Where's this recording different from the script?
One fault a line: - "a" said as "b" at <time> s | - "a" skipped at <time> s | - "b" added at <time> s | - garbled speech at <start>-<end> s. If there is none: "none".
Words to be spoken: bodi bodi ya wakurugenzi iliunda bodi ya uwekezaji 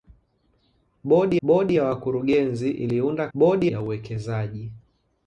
none